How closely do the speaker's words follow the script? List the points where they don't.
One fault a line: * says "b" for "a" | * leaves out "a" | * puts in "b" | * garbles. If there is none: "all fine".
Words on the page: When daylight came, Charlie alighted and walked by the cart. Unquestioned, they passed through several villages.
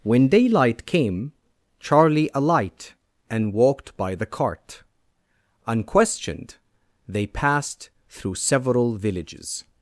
* says "alight" for "alighted"